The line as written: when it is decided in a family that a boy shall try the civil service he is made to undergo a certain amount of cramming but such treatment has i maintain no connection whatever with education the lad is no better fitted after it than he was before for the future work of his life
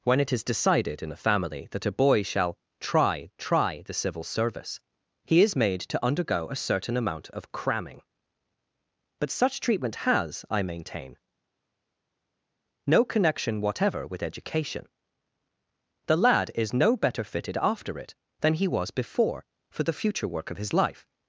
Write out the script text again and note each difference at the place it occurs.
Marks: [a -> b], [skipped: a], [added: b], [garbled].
when it is decided in a family that a boy shall try [added: try] the civil service he is made to undergo a certain amount of cramming but such treatment has i maintain no connection whatever with education the lad is no better fitted after it than he was before for the future work of his life